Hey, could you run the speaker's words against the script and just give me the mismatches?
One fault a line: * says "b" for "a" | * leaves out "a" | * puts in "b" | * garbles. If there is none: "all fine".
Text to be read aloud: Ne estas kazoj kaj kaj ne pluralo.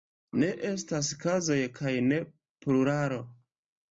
* leaves out "kaj"